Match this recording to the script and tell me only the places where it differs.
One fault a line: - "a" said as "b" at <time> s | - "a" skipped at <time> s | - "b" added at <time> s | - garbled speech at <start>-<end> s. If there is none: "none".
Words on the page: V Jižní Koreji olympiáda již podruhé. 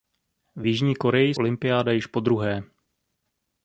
none